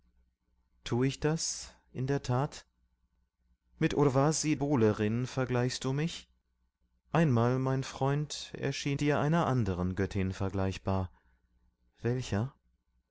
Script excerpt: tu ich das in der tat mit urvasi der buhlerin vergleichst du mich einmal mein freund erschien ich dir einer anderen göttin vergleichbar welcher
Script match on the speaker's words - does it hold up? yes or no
no